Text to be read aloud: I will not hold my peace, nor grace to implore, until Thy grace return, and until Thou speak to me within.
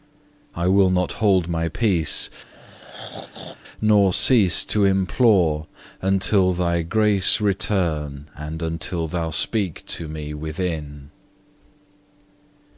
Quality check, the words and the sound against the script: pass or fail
fail